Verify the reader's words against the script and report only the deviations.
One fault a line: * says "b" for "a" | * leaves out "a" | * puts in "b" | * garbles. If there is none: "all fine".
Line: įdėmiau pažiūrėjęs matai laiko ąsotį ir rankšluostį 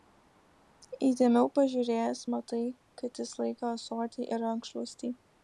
* puts in "kad jis"